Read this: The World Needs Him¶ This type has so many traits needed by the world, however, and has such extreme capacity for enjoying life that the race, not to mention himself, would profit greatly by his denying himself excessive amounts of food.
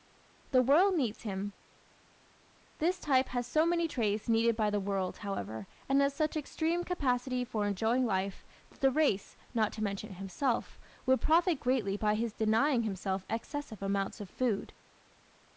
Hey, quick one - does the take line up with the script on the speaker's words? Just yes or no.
yes